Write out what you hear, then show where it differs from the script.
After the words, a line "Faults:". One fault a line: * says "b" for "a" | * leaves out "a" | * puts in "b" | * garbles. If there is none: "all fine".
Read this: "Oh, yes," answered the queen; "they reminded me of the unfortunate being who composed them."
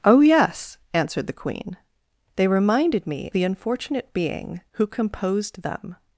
"Oh, yes," answered the queen; "they reminded me the unfortunate being who composed them."
Faults:
* leaves out "of"